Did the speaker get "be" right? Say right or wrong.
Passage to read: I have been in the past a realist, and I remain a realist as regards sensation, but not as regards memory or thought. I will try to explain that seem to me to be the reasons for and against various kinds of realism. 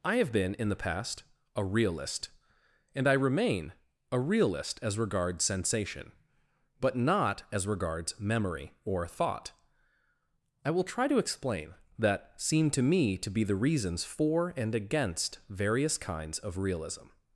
right